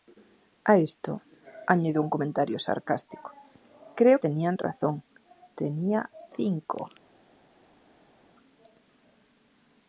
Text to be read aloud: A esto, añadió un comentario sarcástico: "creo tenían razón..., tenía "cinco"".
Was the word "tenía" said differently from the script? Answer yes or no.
no